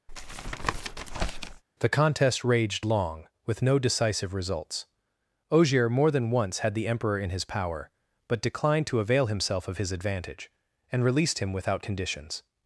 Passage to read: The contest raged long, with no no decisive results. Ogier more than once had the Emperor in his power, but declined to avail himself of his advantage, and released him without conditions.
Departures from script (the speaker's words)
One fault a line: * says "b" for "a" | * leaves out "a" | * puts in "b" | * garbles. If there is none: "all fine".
* leaves out "no"